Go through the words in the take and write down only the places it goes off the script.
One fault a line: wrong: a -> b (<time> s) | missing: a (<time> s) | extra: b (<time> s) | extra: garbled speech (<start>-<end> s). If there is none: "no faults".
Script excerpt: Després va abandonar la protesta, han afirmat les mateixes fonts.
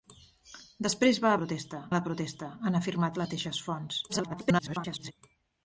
wrong: abandonar -> protesta (1.4 s)
missing: les (3.2 s)
extra: garbled speech (4.1-5.1 s)